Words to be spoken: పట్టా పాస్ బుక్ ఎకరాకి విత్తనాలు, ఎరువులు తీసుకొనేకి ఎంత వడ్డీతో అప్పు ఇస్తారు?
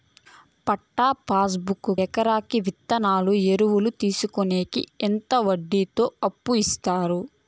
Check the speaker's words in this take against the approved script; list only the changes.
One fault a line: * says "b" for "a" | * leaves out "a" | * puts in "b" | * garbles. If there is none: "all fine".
all fine